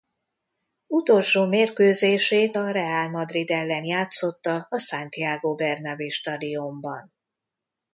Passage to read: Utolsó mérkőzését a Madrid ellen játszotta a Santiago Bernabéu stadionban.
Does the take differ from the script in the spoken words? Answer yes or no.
yes